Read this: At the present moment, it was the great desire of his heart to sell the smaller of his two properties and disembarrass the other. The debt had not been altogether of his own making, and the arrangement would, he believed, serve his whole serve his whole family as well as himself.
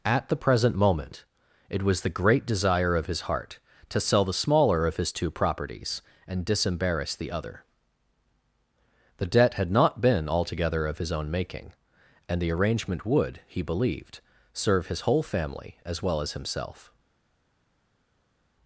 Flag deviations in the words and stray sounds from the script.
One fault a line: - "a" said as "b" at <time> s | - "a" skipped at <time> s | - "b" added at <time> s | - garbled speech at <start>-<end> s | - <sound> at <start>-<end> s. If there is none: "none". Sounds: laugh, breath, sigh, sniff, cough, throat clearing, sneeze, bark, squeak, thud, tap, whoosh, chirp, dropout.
- "serve his whole" skipped at 15.2 s